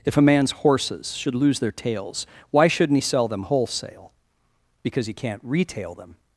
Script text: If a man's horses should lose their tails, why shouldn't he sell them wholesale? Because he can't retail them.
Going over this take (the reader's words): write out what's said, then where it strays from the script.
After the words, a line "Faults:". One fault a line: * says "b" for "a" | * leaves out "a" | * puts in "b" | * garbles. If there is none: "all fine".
If a man's horses should lose their tails, why shouldn't he sell them wholesale? Because he can't retail them.
Faults:
all fine